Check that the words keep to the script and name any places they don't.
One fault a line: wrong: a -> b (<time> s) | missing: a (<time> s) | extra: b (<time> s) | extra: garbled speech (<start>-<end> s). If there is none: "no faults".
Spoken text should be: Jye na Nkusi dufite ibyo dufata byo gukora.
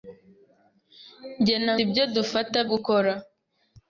missing: Nkusi dufite (1.7 s)
missing: byo (2.6 s)